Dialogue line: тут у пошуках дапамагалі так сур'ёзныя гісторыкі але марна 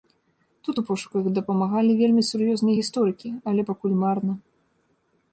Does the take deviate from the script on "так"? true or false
true